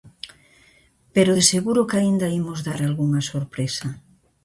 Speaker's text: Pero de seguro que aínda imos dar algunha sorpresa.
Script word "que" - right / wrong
right